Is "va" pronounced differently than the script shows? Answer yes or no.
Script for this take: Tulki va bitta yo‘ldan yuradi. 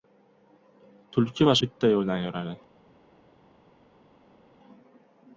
no